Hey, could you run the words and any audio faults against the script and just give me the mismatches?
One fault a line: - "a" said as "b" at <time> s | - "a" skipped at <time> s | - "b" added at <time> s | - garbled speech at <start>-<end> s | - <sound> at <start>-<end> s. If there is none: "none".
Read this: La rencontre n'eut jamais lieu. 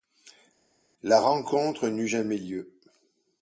none